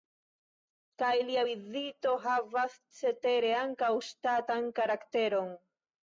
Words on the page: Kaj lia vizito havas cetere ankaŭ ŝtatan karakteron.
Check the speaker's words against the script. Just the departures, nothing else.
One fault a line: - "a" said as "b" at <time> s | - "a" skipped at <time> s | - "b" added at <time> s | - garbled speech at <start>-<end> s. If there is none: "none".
none